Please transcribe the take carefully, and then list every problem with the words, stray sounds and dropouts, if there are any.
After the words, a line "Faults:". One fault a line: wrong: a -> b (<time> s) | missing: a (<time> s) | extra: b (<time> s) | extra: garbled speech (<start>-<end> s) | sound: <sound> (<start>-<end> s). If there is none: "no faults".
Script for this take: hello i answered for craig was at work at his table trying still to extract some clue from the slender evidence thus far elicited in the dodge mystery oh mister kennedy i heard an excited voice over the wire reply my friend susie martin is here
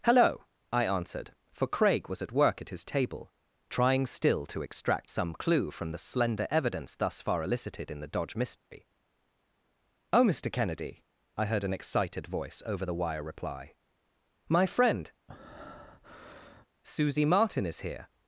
hello i answered for craig was at work at his table trying still to extract some clue from the slender evidence thus far elicited in the dodge mystery oh mister kennedy i heard an excited voice over the wire reply my friend susie martin is here
Faults:
sound: dropout (8.6-8.7 s)
sound: breath (15.3-16.7 s)